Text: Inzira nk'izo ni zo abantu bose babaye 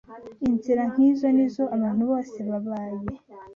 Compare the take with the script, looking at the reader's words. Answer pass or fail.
pass